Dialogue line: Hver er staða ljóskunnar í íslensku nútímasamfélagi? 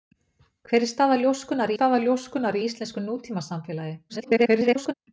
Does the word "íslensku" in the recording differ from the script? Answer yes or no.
no